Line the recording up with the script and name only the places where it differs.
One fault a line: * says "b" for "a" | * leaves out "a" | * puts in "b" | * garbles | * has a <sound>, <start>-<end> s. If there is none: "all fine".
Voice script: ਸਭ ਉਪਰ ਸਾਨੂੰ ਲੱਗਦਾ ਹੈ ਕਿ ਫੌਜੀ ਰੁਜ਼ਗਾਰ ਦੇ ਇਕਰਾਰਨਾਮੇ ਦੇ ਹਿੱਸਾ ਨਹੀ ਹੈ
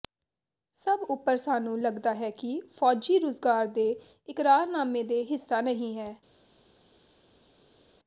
all fine